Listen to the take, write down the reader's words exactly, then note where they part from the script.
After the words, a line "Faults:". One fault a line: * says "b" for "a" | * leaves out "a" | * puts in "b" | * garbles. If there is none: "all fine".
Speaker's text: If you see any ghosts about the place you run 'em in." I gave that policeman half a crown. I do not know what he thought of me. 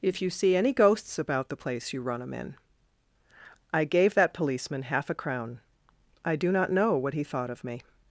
If you see any ghosts about the place you run 'em in." I gave that policeman half a crown. I do not know what he thought of me.
Faults:
all fine